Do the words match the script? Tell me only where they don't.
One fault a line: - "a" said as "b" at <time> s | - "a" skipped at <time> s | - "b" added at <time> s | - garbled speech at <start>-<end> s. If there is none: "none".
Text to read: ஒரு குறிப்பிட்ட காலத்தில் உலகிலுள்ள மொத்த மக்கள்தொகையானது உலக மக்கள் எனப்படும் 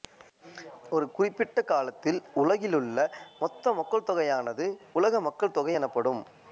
- "தொகை" added at 5.5 s